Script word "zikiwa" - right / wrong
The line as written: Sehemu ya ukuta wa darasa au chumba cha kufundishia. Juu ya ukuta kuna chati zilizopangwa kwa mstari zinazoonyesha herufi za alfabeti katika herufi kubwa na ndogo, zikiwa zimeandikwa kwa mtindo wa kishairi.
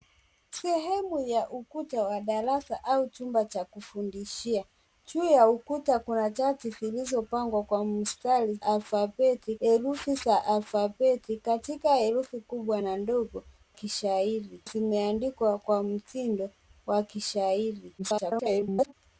wrong